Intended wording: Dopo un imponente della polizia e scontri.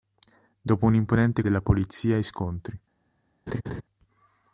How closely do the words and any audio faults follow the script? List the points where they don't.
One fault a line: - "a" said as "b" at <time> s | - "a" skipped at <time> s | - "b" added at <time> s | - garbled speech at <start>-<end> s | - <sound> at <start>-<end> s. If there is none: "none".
- laugh at 3.5-3.8 s